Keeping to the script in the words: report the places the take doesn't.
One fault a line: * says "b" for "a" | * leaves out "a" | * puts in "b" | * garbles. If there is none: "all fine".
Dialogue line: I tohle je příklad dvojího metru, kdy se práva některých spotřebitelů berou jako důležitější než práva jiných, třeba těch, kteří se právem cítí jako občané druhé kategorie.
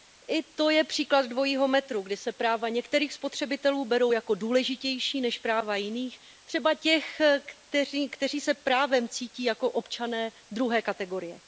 * says "to" for "tohle"